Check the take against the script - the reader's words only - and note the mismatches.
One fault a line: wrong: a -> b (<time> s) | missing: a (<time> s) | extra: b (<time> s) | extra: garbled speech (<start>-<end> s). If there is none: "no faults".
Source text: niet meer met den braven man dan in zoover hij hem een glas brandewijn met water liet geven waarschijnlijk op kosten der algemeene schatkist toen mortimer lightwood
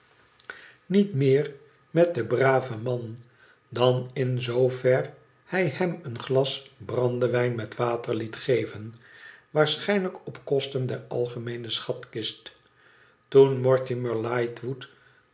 no faults